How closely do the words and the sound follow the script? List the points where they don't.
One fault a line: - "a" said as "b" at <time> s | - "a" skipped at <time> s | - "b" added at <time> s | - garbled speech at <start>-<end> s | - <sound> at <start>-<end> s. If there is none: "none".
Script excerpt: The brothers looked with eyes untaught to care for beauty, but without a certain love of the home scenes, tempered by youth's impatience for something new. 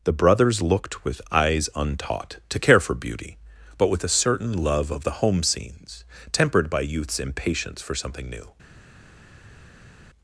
- "without" said as "with" at 3.9 s